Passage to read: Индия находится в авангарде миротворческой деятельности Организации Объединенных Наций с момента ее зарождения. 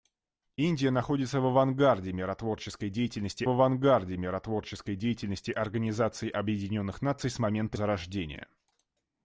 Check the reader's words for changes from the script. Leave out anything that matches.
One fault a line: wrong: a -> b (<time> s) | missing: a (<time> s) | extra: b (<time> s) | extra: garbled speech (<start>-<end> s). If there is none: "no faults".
extra: авангарде миротворческой деятельности (3.5 s)
missing: ее (7.8 s)